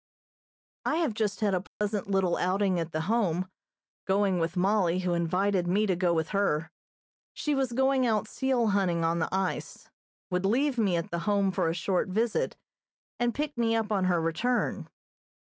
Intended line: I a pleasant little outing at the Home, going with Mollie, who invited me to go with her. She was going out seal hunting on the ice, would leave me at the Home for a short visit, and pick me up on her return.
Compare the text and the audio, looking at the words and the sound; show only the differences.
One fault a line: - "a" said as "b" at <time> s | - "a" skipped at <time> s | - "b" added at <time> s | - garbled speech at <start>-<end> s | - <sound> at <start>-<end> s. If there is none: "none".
- "have just had" added at 0.9 s
- dropout at 1.7-1.8 s